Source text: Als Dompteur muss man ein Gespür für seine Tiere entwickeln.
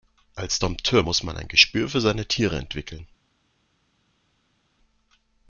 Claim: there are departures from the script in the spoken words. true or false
false